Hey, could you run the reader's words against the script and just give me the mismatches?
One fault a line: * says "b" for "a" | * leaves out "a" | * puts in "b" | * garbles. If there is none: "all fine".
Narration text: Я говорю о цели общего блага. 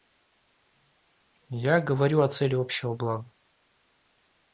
all fine